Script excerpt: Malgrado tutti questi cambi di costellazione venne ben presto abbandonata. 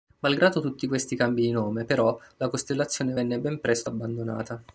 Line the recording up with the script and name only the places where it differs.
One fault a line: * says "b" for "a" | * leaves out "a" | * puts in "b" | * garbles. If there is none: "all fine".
* puts in "nome però la"